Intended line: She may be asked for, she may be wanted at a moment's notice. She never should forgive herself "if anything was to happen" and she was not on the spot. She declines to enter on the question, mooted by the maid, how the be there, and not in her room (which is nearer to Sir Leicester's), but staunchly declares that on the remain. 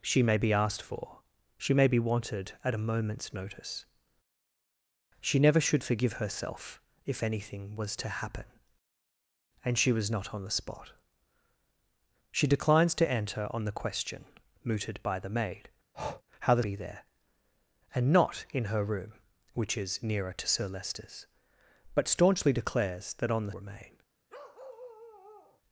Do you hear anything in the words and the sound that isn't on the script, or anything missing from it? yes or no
yes